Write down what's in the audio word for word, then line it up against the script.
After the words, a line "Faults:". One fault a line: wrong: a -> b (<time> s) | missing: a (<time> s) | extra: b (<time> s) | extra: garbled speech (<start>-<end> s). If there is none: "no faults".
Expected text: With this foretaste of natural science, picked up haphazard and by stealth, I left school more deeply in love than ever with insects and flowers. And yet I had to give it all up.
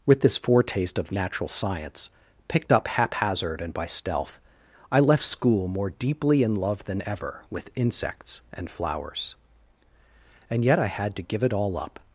With this foretaste of natural science, picked up haphazard and by stealth, I left school more deeply in love than ever with insects and flowers. And yet I had to give it all up.
Faults:
no faults